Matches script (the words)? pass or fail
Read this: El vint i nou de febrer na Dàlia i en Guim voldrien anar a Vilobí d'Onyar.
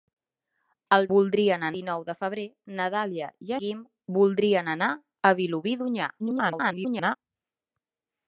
fail